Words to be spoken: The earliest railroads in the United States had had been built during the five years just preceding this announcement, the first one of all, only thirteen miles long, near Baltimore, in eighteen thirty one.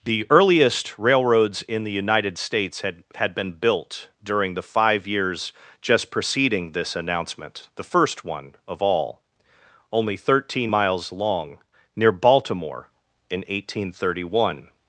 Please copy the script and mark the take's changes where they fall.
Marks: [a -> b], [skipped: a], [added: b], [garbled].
The earliest railroads in the United States had had been built during the five years just preceding this announcement, the first one of all, only thirteen miles long, near Baltimore, in eighteen thirty one.